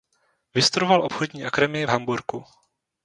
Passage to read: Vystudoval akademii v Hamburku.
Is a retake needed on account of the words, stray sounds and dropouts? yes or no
yes